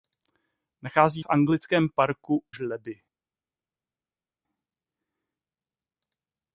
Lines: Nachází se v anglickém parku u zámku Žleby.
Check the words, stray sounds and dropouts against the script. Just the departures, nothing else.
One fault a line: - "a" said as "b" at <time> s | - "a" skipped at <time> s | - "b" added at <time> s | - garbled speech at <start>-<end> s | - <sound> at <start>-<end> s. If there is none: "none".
- "se" skipped at 1.2 s
- "u zámku" skipped at 2.4 s